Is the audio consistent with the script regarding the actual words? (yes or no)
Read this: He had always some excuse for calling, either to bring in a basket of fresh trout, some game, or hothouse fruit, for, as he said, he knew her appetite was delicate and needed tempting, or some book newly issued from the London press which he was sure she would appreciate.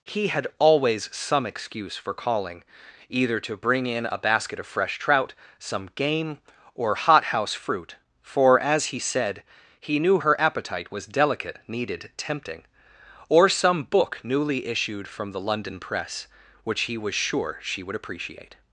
no